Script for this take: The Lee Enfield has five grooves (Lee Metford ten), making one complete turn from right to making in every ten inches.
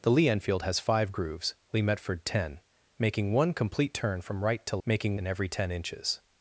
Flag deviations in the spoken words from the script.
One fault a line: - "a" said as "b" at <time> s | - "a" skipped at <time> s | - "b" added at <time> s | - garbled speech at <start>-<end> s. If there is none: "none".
none